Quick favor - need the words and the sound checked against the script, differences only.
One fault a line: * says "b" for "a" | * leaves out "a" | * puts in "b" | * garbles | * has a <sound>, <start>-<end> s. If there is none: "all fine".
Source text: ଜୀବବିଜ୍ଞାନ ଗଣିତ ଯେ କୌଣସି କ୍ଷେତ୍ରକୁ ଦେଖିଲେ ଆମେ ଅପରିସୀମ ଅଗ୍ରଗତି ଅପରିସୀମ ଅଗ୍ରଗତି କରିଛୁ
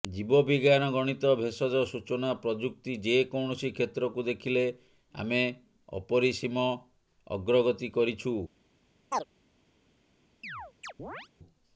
* puts in "ଭେଷଜ ସୂଚନା ପ୍ରଯୁକ୍ତି"
* leaves out "ଅପରିସୀମ ଅଗ୍ରଗତି"
* has a chirp, 9.1-9.2 s
* has a chirp, 10.4-11.3 s